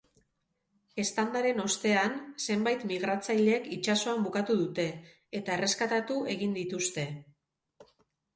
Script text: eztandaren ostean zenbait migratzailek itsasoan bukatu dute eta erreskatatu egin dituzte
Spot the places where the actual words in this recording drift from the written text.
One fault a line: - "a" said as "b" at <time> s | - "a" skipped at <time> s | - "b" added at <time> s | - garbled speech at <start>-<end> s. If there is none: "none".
none